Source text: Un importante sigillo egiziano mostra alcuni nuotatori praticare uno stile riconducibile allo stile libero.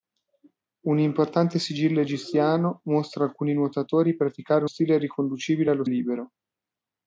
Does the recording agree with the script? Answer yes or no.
no